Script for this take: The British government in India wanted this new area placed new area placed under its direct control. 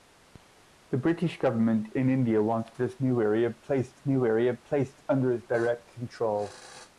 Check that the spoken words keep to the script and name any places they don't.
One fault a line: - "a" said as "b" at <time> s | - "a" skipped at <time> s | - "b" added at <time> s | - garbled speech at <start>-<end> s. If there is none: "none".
none